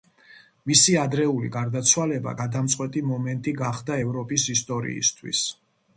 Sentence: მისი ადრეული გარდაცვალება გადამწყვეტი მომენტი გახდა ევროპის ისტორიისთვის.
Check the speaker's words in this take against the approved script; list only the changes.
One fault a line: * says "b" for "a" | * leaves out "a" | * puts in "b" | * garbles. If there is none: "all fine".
all fine